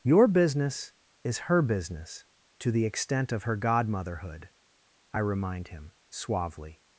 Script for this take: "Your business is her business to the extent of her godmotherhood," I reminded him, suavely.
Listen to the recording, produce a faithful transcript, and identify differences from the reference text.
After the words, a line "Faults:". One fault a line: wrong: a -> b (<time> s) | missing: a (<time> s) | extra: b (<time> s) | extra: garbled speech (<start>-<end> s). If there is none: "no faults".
"Your business is her business to the extent of her godmotherhood," I remind him, suavely.
Faults:
wrong: reminded -> remind (5.2 s)